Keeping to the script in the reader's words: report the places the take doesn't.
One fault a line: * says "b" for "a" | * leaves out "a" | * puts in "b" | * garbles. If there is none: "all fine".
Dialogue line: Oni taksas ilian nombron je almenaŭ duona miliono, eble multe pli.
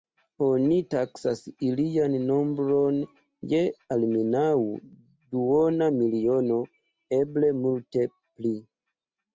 all fine